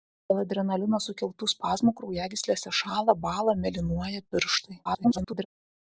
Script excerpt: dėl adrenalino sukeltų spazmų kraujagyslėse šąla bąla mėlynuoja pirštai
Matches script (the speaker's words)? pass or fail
fail